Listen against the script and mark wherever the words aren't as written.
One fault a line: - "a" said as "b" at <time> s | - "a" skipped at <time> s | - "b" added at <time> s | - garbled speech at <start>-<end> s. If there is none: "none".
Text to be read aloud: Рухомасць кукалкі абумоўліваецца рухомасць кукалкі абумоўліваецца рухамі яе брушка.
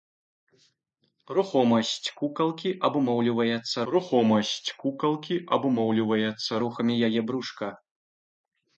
none